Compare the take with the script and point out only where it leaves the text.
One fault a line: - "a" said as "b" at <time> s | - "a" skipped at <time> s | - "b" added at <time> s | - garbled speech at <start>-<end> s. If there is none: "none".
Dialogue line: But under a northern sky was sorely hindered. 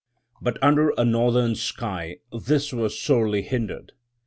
- "this" added at 2.3 s